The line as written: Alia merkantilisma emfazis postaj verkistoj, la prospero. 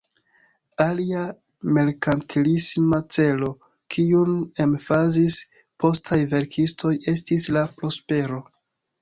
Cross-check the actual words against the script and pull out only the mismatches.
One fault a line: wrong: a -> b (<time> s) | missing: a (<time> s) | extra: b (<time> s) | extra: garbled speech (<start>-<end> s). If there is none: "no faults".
extra: celo kiun (3.2 s)
extra: estis (7.2 s)